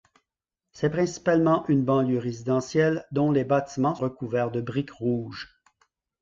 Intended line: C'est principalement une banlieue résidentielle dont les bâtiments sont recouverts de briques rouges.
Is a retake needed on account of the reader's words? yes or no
yes